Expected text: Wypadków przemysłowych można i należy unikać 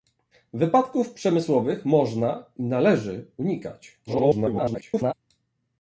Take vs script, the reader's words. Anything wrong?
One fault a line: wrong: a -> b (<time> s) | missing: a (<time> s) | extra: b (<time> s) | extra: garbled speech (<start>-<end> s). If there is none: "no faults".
extra: garbled speech (4.1-5.1 s)